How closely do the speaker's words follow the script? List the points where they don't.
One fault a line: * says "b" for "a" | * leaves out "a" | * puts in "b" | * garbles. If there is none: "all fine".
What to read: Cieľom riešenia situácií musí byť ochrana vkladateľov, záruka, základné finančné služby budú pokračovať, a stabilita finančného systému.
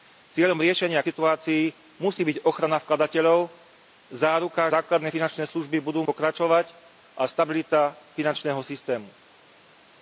all fine